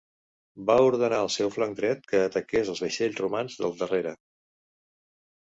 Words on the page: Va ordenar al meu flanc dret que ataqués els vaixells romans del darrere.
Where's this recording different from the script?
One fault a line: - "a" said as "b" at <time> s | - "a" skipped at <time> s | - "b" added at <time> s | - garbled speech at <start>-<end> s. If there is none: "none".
- "meu" said as "seu" at 1.3 s